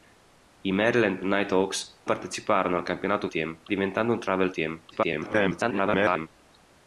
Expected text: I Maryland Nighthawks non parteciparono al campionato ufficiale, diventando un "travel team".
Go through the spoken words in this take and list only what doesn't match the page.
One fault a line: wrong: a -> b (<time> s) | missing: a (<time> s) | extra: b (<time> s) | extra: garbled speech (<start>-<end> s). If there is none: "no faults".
missing: non (2.0 s)
wrong: ufficiale -> team (3.3 s)
extra: garbled speech (4.9-6.3 s)